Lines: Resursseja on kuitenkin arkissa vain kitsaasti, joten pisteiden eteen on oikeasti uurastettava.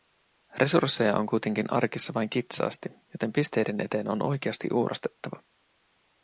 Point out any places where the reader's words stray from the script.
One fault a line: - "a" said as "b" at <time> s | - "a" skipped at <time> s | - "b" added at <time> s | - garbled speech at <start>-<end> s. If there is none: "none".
none